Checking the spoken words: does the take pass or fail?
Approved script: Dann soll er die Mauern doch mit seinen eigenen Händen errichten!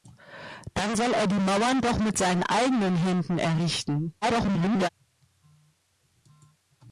fail